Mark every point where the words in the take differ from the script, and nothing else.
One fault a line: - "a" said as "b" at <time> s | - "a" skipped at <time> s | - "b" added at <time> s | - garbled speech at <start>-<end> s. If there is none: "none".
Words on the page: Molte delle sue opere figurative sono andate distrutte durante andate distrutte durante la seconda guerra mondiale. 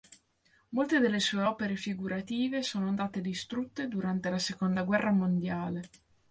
- "andate distrutte durante" skipped at 4.3 s